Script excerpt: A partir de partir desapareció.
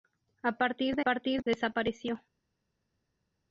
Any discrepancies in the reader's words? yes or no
no